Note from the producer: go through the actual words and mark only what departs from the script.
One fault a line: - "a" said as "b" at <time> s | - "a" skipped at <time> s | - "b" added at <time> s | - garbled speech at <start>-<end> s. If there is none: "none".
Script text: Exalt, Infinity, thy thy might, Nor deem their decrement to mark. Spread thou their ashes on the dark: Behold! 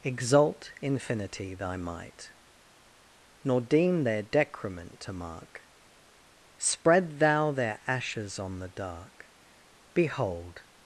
- "thy" skipped at 1.8 s